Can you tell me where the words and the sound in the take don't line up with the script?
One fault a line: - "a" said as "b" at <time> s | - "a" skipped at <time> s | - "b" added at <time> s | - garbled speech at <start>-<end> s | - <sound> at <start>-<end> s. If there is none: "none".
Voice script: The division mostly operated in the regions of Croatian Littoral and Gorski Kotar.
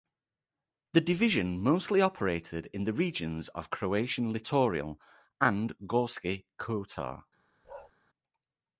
- bark at 7.6-7.9 s